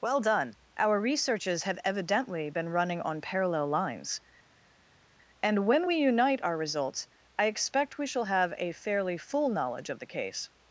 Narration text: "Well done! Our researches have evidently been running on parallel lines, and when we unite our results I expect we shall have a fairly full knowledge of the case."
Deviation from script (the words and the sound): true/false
false